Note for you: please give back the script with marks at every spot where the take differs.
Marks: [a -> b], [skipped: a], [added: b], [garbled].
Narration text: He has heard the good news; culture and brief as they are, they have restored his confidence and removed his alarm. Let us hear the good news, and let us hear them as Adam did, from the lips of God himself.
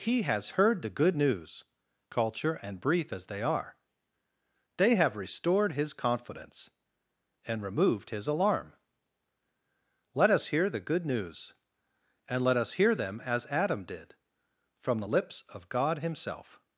He has heard the good news; culture and brief as they are, they have restored his confidence and removed his alarm. Let us hear the good news, and let us hear them as Adam did, from the lips of God himself.